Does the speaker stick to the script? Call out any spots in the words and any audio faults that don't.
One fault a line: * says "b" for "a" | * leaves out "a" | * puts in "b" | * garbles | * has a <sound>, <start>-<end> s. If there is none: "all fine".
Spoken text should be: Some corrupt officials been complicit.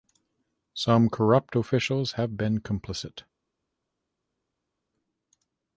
* puts in "have"